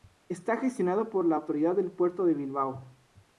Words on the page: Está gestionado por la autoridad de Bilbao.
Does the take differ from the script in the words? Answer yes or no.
yes